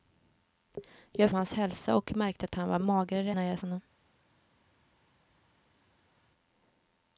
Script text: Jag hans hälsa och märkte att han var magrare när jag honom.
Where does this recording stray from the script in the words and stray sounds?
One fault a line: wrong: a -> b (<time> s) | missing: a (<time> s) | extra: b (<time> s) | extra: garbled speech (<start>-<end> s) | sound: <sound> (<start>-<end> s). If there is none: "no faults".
no faults